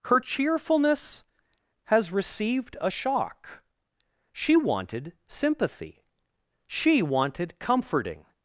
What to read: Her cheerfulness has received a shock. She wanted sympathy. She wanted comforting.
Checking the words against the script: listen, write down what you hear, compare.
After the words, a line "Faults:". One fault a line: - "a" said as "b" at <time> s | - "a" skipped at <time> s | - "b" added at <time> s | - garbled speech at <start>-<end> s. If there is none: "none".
Her cheerfulness has received a shock. She wanted sympathy. She wanted comforting.
Faults:
none